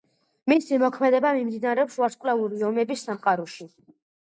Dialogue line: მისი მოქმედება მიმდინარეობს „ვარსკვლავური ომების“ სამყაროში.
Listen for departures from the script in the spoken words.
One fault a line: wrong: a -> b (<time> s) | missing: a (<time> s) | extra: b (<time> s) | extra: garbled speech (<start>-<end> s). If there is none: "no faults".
no faults